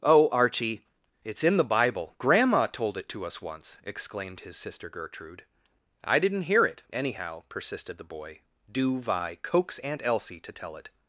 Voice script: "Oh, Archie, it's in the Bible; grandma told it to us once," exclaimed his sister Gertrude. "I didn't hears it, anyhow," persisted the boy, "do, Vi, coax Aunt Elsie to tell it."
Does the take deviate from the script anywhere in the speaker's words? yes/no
yes